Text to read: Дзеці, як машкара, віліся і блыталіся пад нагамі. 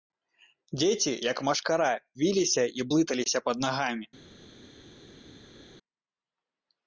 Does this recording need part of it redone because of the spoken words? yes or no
no